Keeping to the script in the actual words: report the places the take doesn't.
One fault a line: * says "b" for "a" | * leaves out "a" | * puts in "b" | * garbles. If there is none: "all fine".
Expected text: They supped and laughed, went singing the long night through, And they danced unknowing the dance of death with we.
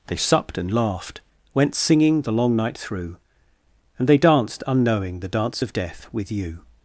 * says "you" for "we"